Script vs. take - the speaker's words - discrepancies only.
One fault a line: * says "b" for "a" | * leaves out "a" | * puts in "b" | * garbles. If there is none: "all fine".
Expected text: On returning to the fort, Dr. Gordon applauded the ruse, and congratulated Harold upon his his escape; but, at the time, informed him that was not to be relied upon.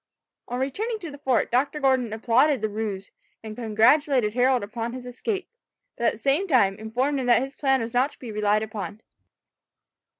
* leaves out "his"
* puts in "same"
* puts in "his plan"